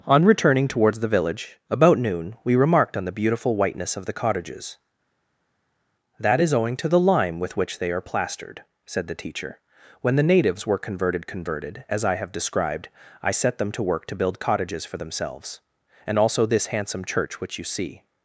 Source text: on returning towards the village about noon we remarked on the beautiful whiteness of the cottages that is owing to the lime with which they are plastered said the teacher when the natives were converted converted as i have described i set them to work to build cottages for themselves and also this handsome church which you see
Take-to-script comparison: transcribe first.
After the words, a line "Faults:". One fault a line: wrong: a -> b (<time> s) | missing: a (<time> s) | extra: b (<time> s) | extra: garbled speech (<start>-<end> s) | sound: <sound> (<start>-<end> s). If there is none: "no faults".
on returning towards the village about noon we remarked on the beautiful whiteness of the cottages that is owing to the lime with which they are plastered said the teacher when the natives were converted converted as i have described i set them to work to build cottages for themselves and also this handsome church which you see
Faults:
no faults